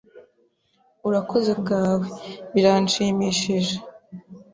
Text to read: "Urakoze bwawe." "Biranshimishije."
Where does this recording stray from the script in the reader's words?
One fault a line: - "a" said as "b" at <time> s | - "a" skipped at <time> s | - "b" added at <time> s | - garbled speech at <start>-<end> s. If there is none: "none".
none